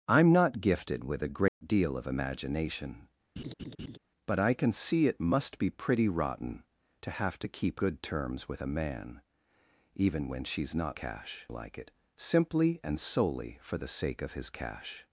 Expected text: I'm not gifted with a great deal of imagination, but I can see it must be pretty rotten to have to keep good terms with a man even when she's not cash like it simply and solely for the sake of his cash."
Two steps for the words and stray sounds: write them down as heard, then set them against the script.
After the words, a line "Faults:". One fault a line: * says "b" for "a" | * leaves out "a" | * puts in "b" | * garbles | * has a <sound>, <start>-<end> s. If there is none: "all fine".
I'm not gifted with a great deal of imagination, but I can see it must be pretty rotten to have to keep good terms with a man even when she's not cash like it simply and solely for the sake of his cash."
Faults:
* has a dropout, 1.5-1.6 s
* has a laugh, 3.4-4.0 s